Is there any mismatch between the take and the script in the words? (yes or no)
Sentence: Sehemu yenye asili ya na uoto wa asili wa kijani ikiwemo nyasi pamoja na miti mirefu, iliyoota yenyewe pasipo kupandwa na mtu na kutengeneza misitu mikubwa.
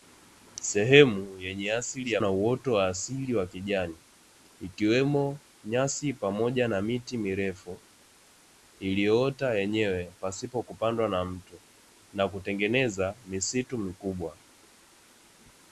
no